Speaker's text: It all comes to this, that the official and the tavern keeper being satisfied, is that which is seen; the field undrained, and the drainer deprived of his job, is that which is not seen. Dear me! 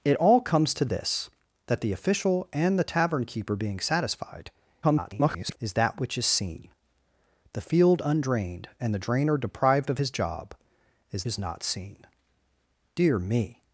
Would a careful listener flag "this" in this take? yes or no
no